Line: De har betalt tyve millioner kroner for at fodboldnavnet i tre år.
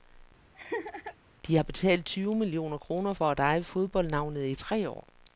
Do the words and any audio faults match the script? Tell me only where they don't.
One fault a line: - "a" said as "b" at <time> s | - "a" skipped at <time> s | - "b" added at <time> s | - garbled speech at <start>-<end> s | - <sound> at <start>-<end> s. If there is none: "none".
- laugh at 0.5-1.2 s
- "eje" added at 3.4 s